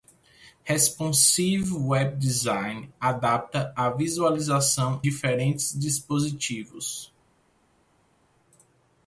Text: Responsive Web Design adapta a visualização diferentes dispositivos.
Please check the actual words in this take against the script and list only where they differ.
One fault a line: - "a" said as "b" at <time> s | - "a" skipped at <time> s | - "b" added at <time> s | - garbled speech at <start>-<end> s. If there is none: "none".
none